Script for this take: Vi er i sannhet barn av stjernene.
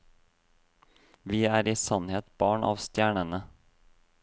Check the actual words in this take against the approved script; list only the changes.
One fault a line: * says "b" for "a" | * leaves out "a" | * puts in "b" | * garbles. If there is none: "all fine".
all fine